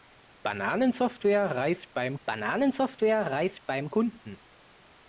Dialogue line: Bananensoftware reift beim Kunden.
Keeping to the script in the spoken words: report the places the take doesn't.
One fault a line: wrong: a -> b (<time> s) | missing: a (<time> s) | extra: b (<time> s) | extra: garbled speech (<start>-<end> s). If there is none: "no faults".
extra: bananensoftware reift beim (2.2 s)